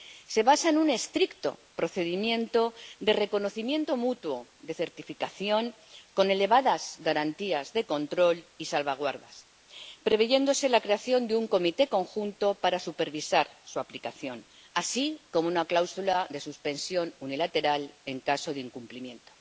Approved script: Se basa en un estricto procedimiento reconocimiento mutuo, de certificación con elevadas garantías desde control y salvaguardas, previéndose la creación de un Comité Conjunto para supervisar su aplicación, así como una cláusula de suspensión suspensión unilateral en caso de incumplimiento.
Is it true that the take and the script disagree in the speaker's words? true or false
true